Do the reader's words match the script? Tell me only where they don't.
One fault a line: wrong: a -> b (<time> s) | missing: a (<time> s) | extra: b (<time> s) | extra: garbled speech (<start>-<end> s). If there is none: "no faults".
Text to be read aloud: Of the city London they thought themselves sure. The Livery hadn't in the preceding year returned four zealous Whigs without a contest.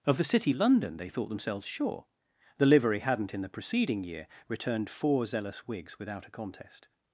no faults